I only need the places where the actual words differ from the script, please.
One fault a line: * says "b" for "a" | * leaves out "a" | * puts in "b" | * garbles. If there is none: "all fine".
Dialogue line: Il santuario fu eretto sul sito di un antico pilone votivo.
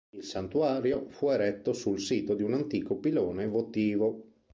all fine